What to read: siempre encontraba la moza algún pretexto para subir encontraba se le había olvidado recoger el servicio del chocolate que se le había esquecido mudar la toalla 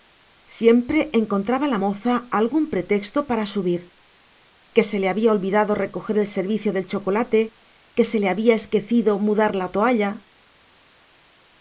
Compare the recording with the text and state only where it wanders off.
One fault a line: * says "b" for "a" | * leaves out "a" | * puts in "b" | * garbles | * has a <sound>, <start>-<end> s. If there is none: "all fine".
* says "que" for "encontraba"